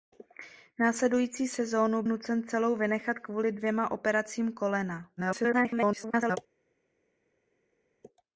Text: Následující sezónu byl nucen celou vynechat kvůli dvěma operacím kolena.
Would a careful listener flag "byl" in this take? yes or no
yes